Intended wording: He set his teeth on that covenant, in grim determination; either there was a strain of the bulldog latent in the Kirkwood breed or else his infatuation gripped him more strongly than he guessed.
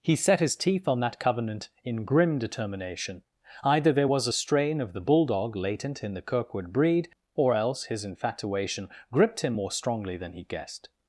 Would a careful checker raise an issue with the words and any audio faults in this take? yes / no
no